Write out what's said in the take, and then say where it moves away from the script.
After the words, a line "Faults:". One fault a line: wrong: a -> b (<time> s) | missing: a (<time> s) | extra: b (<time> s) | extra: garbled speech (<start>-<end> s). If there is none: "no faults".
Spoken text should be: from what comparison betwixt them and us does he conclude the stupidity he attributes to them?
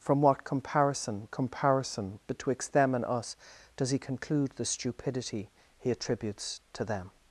from what comparison comparison betwixt them and us does he conclude the stupidity he attributes to them?
Faults:
extra: comparison (1.3 s)